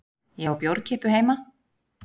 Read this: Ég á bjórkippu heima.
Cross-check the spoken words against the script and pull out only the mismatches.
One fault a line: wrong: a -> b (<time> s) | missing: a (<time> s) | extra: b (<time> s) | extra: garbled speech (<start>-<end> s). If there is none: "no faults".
no faults